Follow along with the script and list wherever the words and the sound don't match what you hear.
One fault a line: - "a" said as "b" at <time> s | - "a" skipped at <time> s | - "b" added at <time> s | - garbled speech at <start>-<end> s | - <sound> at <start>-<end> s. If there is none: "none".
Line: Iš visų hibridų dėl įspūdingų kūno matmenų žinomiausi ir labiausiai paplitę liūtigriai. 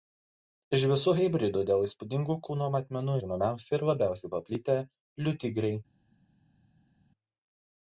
none